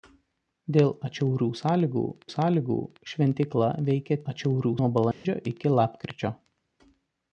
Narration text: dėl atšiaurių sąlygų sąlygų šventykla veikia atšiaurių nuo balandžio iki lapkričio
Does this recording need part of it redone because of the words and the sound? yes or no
yes